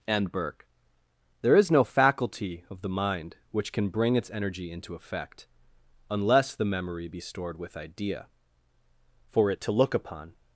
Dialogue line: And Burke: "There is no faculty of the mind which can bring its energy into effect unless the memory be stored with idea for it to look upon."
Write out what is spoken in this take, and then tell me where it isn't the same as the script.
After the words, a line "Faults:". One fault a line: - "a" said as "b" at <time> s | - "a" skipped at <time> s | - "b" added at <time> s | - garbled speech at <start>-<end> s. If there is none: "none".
And Burke: "There is no faculty of the mind which can bring its energy into effect unless the memory be stored with idea for it to look upon."
Faults:
none